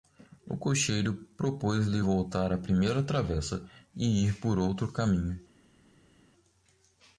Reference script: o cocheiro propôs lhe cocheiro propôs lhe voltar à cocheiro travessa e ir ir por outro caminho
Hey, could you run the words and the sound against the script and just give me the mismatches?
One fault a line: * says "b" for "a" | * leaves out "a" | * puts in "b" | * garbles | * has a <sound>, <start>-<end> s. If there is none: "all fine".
* leaves out "cocheiro propôs lhe"
* says "primeira" for "cocheiro"
* leaves out "ir"